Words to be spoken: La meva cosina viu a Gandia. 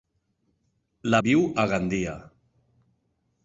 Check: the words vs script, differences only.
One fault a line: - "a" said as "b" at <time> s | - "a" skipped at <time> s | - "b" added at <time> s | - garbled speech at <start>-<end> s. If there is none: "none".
- "meva cosina" skipped at 1.2 s